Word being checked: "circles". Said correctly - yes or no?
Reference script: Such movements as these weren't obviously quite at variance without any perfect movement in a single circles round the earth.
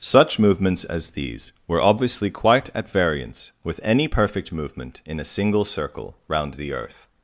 no